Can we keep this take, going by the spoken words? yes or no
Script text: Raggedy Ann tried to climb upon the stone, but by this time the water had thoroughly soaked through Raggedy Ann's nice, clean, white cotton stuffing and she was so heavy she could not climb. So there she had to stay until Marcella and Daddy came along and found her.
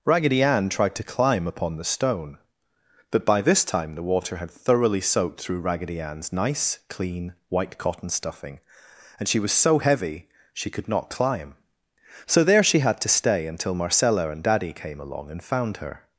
yes